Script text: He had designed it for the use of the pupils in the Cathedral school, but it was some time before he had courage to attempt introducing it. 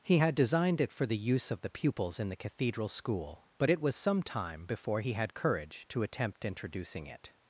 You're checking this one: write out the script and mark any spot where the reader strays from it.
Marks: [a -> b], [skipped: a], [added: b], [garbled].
He had designed it for the use of the pupils in the Cathedral school, but it was some time before he had courage to attempt introducing it.